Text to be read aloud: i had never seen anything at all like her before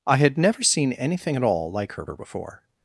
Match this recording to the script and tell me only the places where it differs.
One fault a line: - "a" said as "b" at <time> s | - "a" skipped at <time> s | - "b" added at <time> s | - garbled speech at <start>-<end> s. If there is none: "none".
- "her" added at 2.0 s